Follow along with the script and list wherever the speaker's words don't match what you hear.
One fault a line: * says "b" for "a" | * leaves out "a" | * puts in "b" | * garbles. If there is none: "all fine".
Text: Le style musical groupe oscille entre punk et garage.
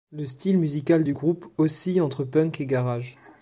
* puts in "du"